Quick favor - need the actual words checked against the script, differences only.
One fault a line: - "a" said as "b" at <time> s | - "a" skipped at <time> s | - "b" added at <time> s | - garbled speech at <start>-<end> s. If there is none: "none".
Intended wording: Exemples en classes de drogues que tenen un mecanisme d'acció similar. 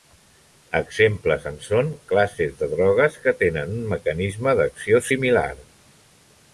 - "són" added at 1.7 s